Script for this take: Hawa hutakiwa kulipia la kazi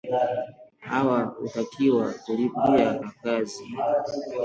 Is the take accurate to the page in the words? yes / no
yes